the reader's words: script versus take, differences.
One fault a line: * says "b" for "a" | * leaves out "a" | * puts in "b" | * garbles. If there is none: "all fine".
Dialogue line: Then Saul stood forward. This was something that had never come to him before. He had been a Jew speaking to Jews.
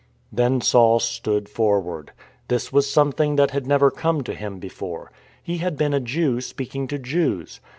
all fine